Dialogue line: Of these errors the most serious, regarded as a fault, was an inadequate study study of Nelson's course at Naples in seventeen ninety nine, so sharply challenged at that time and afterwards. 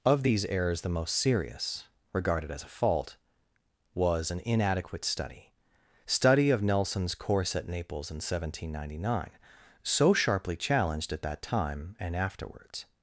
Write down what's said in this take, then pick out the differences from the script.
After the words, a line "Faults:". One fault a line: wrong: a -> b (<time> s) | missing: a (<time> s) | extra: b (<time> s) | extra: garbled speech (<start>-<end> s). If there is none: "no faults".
Of these errors the most serious, regarded as a fault, was an inadequate study study of Nelson's course at Naples in seventeen ninety nine, so sharply challenged at that time and afterwards.
Faults:
no faults